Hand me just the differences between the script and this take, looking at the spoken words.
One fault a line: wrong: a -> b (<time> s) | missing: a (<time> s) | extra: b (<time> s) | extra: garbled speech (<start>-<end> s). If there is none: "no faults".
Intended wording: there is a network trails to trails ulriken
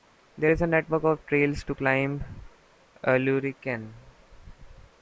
extra: of (1.0 s)
wrong: trails -> climb (1.7 s)